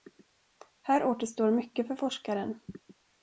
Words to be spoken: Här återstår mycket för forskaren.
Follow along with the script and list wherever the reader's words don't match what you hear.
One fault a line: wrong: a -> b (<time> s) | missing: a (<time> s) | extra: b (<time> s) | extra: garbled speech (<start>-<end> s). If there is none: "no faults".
no faults